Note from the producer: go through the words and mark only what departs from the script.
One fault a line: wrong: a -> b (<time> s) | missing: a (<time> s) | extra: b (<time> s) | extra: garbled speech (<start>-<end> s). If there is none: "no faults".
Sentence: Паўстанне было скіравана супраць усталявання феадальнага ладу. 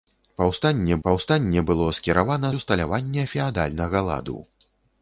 extra: паўстанне (1.1 s)
missing: супраць (2.5 s)